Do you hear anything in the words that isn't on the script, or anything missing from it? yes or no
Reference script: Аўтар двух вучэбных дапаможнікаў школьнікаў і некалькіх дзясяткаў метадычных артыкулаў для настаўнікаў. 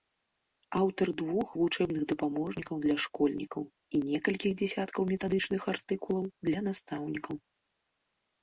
yes